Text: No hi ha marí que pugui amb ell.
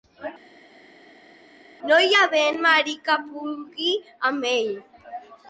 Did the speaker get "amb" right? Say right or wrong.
right